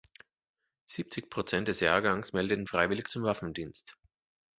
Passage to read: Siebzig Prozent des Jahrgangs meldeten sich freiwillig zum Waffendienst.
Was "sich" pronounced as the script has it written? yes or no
no